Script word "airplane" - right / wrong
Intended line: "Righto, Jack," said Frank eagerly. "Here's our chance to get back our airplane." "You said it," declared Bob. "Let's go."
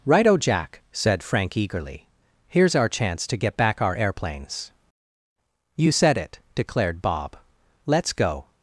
wrong